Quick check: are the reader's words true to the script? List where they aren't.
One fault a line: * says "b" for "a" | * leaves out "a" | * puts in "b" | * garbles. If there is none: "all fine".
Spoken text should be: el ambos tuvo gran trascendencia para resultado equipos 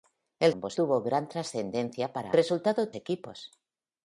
all fine